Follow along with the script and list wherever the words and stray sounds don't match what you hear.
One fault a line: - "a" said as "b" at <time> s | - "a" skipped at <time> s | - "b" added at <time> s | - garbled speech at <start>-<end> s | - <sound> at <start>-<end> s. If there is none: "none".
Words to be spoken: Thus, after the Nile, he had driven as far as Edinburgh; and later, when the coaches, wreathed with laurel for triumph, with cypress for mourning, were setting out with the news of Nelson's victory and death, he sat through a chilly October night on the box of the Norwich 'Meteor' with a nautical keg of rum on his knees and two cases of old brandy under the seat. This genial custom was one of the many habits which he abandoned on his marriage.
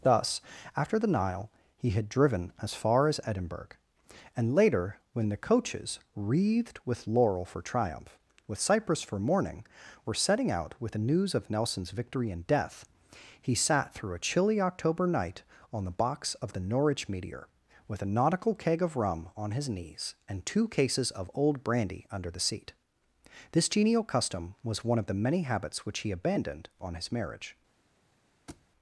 - thud at 28.5-28.7 s